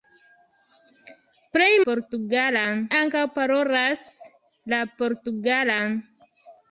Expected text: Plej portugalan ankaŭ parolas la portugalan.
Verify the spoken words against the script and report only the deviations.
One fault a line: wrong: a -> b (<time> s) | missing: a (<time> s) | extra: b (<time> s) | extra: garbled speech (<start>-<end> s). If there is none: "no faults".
no faults